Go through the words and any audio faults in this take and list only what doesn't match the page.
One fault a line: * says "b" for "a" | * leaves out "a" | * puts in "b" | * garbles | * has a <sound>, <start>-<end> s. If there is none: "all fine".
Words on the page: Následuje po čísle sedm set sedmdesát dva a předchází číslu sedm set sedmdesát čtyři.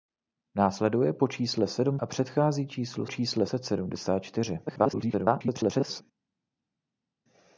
* leaves out "set sedmdesát dva"
* says "čísle" for "sedm"
* garbles